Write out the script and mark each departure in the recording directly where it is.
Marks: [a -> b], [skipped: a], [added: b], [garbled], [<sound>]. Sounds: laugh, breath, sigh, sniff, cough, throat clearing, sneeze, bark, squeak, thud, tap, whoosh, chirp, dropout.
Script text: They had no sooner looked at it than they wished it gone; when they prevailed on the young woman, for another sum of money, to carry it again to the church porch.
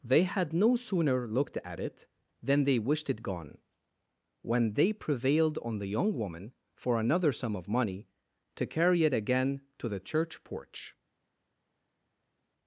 They had no sooner looked at it than they wished it gone; when they prevailed on the young woman, for another sum of money, to carry it again to the church porch.